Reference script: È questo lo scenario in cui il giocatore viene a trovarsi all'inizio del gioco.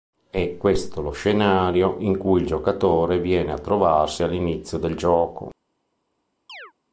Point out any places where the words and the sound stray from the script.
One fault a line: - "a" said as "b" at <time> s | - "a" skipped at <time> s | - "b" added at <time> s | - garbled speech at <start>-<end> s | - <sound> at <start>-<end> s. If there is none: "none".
- chirp at 6.5-6.7 s